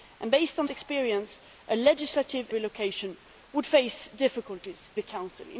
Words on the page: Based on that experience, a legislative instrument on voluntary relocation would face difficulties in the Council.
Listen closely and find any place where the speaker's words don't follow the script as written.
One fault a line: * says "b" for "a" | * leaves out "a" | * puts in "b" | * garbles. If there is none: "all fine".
* leaves out "that"
* leaves out "instrument on voluntary"
* leaves out "in"